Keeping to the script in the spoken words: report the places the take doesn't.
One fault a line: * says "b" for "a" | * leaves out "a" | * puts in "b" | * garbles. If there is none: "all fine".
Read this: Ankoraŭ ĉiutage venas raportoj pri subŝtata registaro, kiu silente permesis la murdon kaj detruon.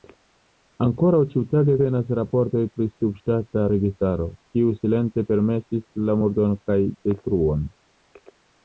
all fine